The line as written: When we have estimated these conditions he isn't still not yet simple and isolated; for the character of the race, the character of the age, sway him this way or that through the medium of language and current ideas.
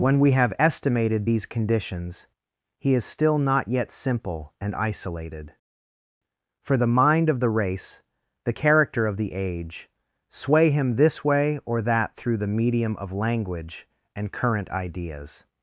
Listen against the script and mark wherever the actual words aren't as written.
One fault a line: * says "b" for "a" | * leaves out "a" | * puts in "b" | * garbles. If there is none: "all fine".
* says "is" for "isn't"
* says "mind" for "character"